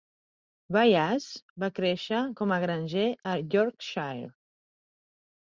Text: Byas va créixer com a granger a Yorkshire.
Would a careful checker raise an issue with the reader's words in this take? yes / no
no